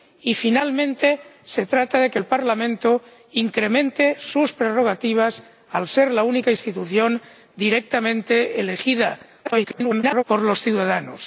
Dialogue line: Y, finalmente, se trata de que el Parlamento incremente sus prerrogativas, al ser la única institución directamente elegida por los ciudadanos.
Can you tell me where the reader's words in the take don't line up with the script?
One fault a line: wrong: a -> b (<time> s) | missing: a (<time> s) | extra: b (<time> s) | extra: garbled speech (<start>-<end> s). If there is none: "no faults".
extra: garbled speech (9.4-10.2 s)